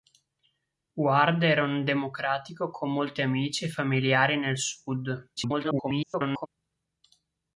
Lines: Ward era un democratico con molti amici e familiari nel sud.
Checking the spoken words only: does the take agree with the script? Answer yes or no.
no